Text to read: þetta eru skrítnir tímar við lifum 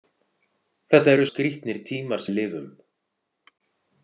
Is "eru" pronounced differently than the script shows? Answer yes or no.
no